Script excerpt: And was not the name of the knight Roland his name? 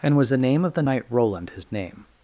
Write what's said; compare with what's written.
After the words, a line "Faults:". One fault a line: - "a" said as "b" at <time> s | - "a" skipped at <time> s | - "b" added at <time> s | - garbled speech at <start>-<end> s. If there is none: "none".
And was the name of the knight Roland his name?
Faults:
- "not" skipped at 0.3 s